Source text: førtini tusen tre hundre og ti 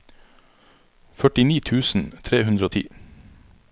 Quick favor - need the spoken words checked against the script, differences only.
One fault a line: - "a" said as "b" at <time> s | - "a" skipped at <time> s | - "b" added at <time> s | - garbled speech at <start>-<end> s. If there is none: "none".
none